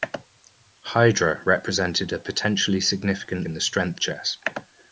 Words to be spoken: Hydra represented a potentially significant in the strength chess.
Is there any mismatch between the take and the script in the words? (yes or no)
no